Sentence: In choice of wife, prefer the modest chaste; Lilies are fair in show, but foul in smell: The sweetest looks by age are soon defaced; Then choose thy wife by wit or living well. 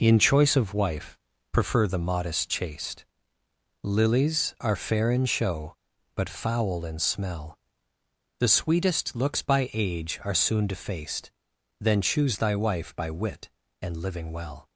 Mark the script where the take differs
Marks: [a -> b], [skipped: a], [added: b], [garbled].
In choice of wife, prefer the modest chaste; Lilies are fair in show, but foul in smell: The sweetest looks by age are soon defaced; Then choose thy wife by wit [or -> and] living well.